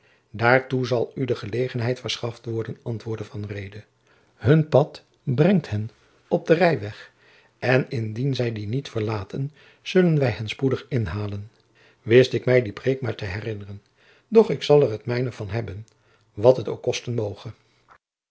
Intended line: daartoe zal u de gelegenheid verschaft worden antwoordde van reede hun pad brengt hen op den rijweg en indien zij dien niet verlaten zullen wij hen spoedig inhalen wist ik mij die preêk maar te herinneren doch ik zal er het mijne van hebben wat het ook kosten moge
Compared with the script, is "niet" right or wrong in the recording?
right